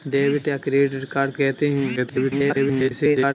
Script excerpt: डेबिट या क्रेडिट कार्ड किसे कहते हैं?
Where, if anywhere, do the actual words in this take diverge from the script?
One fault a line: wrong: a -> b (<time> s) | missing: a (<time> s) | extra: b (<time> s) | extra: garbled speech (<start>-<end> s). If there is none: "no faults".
missing: किसे (1.4 s)
extra: garbled speech (2.0-3.3 s)